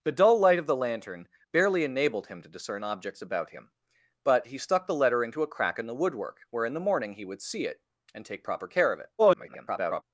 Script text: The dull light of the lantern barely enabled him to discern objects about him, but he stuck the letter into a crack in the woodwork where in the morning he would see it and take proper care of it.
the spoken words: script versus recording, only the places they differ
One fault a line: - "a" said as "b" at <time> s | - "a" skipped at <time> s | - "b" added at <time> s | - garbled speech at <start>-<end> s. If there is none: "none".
- garbled speech at 9.2-10.0 s